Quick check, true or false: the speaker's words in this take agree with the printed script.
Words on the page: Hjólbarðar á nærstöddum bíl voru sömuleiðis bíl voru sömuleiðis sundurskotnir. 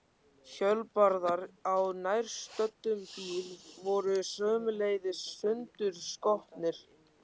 false